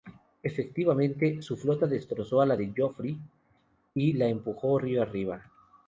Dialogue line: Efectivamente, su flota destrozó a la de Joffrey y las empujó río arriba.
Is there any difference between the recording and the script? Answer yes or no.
yes